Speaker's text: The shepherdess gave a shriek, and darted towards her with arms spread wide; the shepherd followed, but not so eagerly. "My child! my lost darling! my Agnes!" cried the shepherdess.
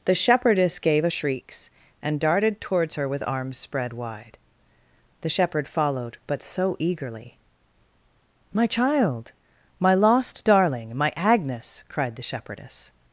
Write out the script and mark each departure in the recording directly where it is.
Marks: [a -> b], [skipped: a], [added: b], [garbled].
The shepherdess gave a [shriek, -> shrieks] and darted towards her with arms spread wide; the shepherd followed, but [skipped: not] so eagerly. "My child! my lost darling! my Agnes!" cried the shepherdess.